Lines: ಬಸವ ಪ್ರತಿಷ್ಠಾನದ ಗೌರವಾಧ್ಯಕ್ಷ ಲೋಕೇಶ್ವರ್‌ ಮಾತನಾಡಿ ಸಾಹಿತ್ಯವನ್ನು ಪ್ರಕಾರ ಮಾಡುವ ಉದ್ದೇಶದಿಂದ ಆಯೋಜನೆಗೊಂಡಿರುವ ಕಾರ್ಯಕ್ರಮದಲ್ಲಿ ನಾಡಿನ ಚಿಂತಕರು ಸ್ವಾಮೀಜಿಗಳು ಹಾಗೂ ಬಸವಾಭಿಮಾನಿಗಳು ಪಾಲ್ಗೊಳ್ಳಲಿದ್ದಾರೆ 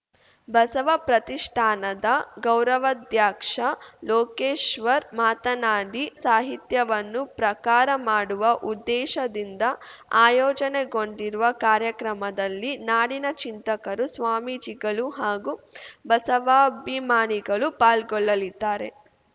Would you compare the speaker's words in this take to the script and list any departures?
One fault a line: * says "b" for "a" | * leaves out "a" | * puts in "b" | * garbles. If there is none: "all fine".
all fine